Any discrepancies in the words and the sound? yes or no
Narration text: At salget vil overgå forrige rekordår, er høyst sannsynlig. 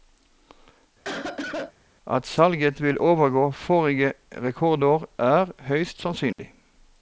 yes